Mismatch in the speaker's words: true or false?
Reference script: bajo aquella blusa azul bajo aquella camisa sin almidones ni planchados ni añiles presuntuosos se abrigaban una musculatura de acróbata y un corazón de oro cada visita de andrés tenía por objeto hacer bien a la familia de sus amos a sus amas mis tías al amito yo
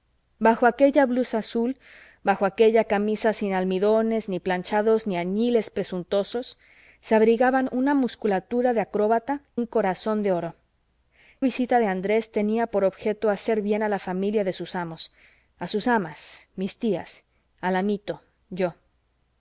true